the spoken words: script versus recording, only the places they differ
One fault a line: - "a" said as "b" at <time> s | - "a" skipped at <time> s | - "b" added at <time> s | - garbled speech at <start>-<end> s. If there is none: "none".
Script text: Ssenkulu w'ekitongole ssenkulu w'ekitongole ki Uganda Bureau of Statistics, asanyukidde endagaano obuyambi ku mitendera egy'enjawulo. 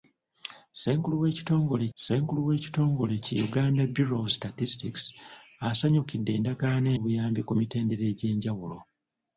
none